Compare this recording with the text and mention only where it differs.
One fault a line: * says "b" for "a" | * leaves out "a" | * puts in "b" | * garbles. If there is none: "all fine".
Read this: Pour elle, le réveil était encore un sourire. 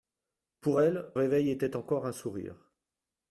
* leaves out "le"